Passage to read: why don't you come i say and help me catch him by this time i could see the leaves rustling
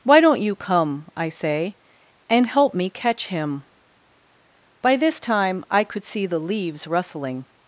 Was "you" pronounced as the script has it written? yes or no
yes